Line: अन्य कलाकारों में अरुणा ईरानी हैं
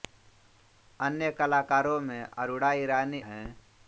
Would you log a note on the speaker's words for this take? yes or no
no